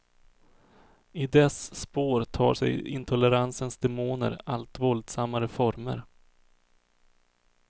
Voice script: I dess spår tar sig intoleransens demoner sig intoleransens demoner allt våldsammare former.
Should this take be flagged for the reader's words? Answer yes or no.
yes